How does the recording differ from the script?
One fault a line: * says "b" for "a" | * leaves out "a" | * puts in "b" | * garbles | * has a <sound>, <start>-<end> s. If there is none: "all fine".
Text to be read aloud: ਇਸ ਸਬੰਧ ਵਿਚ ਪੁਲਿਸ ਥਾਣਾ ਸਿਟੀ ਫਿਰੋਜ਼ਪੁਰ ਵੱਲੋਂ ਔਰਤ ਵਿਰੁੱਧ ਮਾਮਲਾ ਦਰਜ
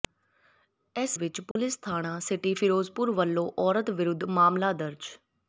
* leaves out "ਸਬੰਧ"
* has a dropout, 1.5-1.6 s